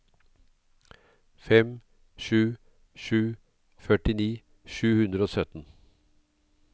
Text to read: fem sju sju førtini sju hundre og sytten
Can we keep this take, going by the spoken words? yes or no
yes